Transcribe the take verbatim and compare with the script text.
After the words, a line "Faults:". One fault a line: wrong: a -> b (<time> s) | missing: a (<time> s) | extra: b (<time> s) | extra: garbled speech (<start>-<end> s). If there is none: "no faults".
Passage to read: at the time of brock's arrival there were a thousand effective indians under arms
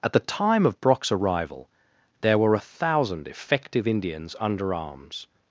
at the time of brock's arrival there were a thousand effective indians under arms
Faults:
no faults